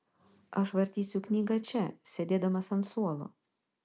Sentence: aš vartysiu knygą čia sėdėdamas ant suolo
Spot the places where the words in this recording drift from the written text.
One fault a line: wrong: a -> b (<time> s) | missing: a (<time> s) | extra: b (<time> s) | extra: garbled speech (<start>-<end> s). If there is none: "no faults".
no faults